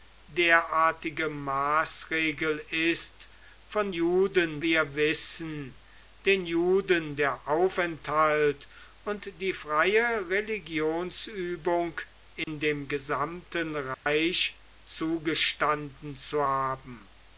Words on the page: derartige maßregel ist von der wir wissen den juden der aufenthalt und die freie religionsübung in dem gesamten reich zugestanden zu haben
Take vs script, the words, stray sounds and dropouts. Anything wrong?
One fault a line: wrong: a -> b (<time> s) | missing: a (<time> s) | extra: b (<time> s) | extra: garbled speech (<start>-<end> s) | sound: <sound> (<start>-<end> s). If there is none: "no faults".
wrong: der -> juden (3.9 s)
sound: dropout (12.4-12.5 s)
sound: dropout (13.9-14.1 s)